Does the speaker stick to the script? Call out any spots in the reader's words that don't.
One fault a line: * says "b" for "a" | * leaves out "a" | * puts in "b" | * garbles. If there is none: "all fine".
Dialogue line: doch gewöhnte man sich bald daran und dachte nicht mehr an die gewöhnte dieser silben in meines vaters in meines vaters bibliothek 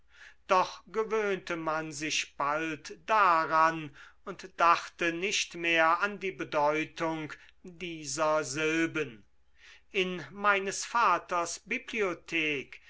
* says "bedeutung" for "gewöhnte"
* leaves out "in meines vaters"